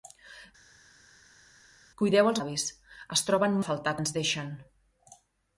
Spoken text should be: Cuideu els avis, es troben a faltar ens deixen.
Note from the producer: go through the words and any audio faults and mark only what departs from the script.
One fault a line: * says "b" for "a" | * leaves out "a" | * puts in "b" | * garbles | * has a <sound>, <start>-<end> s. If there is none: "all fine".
all fine